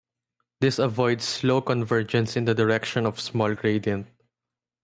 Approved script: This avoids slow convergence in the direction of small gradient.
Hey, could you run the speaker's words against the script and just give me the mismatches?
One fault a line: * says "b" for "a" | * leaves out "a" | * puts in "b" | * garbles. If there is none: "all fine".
all fine